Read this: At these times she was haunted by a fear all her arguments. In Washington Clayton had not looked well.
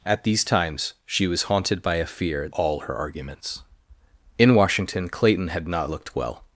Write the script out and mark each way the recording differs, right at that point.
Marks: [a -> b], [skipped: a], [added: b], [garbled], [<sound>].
At these times she was haunted by a fear all her arguments. In Washington Clayton had not looked well.